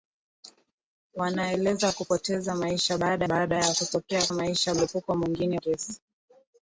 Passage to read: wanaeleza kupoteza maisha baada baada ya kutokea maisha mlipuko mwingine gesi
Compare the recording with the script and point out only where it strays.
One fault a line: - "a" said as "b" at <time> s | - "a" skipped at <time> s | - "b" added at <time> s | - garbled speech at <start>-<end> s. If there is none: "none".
none